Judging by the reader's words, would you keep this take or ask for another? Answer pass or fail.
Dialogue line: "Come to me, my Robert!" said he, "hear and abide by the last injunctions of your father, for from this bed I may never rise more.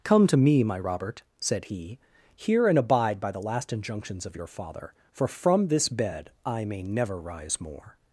pass